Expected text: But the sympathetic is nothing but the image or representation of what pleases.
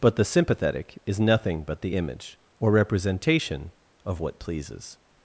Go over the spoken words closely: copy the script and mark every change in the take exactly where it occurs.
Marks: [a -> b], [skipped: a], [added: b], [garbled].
But the sympathetic is nothing but the image or representation of what pleases.